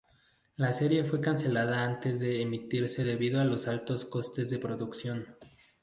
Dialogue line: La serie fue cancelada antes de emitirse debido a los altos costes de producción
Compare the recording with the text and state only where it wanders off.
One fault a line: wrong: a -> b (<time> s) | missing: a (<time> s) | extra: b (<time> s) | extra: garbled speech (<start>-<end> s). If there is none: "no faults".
no faults